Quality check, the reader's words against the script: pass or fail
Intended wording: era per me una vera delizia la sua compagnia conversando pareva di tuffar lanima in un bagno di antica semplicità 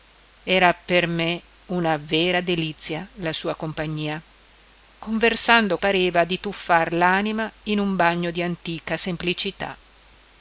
pass